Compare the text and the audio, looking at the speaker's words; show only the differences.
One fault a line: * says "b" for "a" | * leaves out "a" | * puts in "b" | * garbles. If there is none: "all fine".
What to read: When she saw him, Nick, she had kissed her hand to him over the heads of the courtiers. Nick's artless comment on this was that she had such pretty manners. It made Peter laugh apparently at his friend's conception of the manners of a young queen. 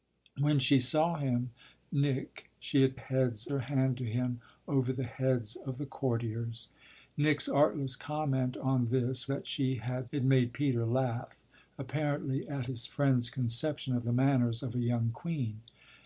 * says "heads" for "kissed"
* leaves out "was"
* leaves out "such pretty manners"